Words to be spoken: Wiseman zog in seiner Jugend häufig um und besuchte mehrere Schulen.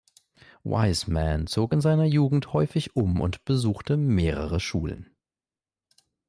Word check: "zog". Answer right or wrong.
right